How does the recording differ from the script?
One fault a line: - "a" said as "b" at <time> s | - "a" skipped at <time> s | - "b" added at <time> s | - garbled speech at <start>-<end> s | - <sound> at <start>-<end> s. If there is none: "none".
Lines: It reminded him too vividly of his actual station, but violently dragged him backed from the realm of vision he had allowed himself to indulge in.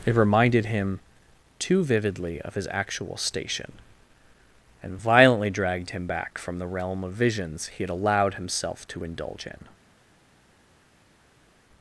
- "but" said as "and" at 4.8 s
- "backed" said as "back" at 6.0 s
- "vision" said as "visions" at 7.1 s